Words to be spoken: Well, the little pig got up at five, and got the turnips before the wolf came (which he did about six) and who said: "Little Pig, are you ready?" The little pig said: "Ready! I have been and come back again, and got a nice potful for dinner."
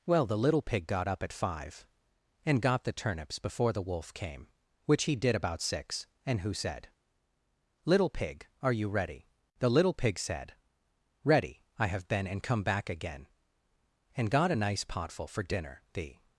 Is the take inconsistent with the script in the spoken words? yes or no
yes